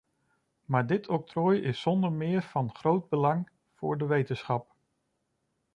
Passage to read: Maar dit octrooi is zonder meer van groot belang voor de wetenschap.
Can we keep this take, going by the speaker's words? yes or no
yes